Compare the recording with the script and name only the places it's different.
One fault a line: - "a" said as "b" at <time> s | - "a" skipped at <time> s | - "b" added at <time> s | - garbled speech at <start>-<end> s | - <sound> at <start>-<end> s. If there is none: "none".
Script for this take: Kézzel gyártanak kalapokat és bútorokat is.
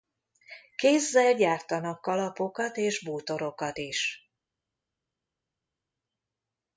none